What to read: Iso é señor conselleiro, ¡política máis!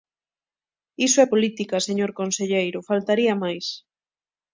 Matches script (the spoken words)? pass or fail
fail